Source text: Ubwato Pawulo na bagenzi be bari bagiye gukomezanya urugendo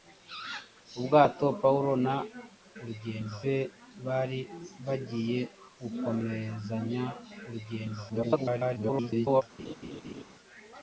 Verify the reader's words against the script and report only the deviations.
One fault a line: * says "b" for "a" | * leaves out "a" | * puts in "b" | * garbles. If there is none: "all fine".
* says "urugendo" for "bagenzi"
* garbles